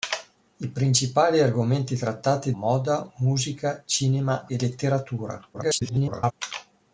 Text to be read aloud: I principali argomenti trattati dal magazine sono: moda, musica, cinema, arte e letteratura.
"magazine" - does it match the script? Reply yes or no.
no